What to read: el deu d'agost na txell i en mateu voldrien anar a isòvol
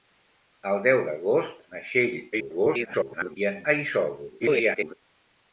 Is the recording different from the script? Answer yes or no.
yes